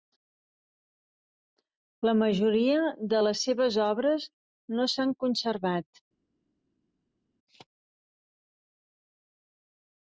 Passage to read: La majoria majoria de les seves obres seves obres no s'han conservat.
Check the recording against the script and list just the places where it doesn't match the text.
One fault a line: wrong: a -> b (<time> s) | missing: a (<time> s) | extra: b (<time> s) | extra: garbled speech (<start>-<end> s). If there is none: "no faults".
missing: majoria (2.8 s)
missing: seves obres (4.3 s)